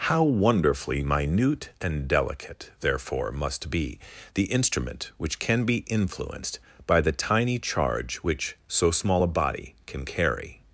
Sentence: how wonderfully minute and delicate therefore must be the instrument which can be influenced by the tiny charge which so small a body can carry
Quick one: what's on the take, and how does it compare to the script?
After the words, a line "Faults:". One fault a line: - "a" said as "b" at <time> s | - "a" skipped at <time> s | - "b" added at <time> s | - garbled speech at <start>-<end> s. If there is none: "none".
how wonderfully minute and delicate therefore must be the instrument which can be influenced by the tiny charge which so small a body can carry
Faults:
none